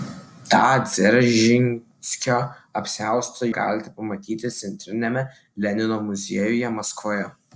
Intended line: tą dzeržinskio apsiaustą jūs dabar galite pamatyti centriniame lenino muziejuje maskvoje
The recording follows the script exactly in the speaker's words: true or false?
false